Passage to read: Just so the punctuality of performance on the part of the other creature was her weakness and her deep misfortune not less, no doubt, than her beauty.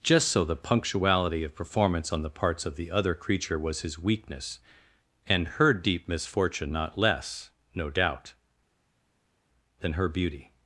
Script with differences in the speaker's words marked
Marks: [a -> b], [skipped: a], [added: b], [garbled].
Just so the punctuality of performance on the [part -> parts] of the other creature was [her -> his] weakness and her deep misfortune not less, no doubt, than her beauty.